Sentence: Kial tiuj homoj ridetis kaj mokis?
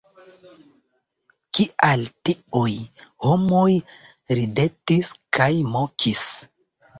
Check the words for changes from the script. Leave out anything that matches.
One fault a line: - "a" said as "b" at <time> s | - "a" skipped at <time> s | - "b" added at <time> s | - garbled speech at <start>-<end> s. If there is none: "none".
none